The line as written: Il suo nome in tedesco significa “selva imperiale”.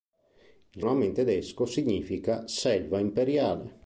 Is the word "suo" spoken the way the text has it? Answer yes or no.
no